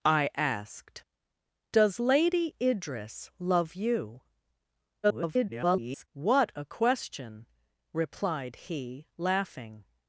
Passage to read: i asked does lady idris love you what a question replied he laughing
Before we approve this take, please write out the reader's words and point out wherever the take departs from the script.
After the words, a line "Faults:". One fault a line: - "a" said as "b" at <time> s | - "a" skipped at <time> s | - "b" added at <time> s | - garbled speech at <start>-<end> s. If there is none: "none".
i asked does lady idris love you [garbled] what a question replied he laughing
Faults:
- garbled speech at 5.0-6.1 s